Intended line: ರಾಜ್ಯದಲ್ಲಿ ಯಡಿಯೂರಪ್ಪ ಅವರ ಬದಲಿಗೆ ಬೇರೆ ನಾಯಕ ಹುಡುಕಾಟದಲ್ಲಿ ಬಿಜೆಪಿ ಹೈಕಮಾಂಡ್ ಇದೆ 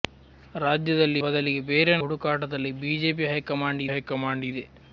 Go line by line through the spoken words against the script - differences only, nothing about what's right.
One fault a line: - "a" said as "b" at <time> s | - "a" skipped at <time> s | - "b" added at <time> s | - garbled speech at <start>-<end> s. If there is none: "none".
- "ಯಡಿಯೂರಪ್ಪ ಅವರ" skipped at 1.2 s
- "ನಾಯಕ" skipped at 1.9 s
- "ಹೈಕಮಾಂಡ್" added at 3.9 s